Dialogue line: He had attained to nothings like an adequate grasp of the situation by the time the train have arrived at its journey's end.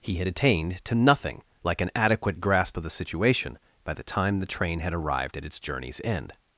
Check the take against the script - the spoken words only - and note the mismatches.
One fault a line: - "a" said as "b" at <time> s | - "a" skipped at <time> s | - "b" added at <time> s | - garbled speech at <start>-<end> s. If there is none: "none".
- "nothings" said as "nothing" at 0.9 s
- "have" said as "had" at 4.8 s